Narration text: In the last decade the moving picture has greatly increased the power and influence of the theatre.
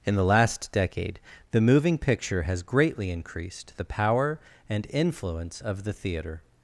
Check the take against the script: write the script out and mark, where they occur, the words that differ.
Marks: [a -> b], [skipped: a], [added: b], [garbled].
In the last decade the moving picture has greatly increased the power and influence of the theatre.